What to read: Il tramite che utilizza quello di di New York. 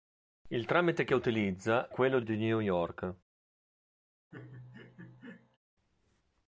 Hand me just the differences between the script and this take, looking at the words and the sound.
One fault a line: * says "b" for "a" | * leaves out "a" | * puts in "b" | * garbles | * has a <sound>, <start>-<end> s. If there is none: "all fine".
* has a laugh, 4.3-5.6 s